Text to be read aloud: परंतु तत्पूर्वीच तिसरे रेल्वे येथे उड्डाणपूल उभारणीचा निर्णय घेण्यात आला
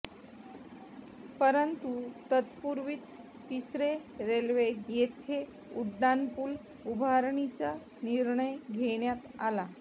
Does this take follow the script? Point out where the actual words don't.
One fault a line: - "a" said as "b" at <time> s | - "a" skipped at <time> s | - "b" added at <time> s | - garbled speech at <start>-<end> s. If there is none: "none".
none